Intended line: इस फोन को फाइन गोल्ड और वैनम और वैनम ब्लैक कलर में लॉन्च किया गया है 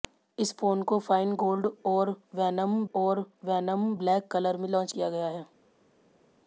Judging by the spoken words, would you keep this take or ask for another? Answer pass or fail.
pass